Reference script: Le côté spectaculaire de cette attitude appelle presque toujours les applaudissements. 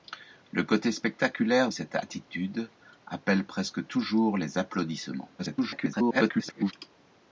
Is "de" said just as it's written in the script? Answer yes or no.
no